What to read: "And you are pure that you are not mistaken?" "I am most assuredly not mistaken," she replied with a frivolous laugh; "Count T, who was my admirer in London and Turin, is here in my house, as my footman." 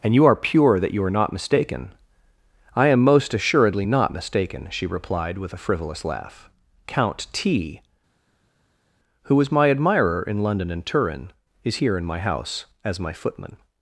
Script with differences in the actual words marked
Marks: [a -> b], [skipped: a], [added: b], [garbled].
"And you are pure that you are not mistaken?" "I am most assuredly not mistaken," she replied with a frivolous laugh; "Count T, who was my admirer in London and Turin, is here in my house, as my footman."